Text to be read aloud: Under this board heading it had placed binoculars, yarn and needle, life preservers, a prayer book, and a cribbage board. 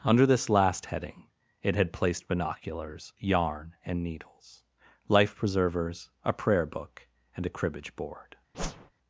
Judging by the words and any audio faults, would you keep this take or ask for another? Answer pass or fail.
fail